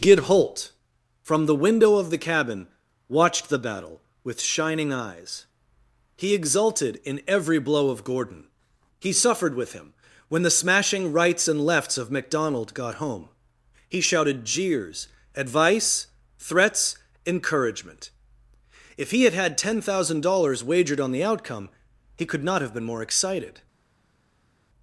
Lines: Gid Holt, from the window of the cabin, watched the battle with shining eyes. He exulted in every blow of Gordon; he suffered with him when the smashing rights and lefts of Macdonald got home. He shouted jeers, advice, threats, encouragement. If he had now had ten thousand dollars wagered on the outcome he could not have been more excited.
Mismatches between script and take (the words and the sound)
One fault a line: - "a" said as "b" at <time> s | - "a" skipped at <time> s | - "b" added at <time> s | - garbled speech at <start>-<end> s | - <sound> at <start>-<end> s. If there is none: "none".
- "now" skipped at 19.4 s